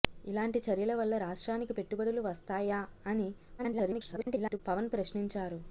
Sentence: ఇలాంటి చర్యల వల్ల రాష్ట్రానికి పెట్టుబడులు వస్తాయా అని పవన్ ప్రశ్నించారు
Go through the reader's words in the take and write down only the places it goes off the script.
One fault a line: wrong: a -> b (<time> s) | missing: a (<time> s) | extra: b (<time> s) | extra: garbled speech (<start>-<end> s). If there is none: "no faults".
extra: garbled speech (3.6-4.6 s)